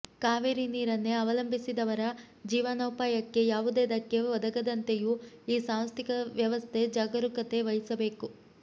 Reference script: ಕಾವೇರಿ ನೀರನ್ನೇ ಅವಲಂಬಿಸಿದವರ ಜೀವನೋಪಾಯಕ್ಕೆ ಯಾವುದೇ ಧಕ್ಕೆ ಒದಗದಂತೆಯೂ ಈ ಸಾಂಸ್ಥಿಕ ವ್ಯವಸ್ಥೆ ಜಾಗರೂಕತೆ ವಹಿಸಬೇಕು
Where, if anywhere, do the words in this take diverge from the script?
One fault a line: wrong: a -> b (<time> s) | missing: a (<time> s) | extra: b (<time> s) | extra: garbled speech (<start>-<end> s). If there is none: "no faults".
no faults